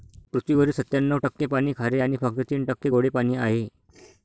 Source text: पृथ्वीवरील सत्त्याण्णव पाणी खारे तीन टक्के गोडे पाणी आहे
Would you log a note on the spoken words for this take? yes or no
yes